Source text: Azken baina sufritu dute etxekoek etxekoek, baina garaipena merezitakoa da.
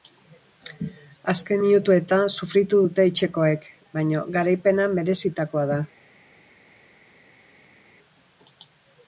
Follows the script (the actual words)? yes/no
no